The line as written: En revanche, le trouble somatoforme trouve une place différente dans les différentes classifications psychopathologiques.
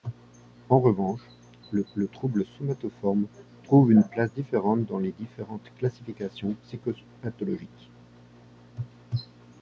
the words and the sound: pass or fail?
fail